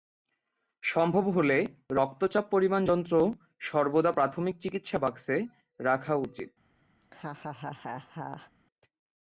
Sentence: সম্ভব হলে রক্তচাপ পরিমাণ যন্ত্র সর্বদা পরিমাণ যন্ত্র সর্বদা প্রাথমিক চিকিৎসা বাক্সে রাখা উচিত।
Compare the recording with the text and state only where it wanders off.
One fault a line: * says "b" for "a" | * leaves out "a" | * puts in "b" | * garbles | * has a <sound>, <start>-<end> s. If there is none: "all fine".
* leaves out "পরিমাণ যন্ত্র সর্বদা"
* has a laugh, 7.0-8.5 s